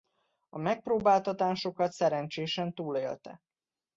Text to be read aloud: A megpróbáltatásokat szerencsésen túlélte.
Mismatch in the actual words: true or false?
false